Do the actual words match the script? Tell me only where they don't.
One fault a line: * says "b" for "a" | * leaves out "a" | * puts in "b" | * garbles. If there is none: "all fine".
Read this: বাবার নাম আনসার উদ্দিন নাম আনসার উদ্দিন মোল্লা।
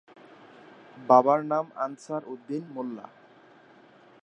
* leaves out "নাম আনসার উদ্দিন"